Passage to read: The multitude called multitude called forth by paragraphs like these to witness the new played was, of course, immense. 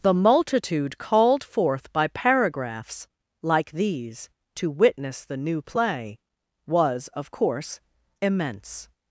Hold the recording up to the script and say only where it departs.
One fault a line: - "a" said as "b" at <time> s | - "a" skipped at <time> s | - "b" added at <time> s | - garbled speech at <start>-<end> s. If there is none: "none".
- "multitude called" skipped at 1.4 s
- "played" said as "play" at 5.6 s